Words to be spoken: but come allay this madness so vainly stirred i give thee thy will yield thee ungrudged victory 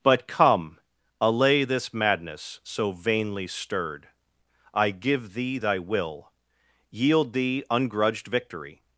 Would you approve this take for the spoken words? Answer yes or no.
yes